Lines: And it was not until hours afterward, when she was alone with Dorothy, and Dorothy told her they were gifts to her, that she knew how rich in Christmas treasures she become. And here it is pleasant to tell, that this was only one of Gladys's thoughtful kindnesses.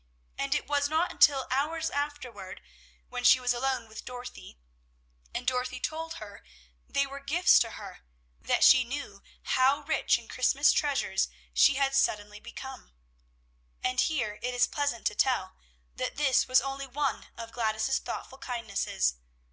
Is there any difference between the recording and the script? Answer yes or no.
yes